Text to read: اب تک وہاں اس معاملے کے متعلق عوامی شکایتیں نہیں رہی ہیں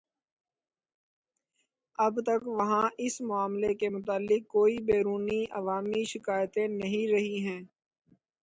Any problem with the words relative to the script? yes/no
yes